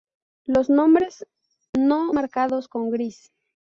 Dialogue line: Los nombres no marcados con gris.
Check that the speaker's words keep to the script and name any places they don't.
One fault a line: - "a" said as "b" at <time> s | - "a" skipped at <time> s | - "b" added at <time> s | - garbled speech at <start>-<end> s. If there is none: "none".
none